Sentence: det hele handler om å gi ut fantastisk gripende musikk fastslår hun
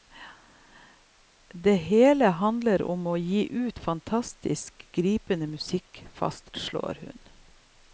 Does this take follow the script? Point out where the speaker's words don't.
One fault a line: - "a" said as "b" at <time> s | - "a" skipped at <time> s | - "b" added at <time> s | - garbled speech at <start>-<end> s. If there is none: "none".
none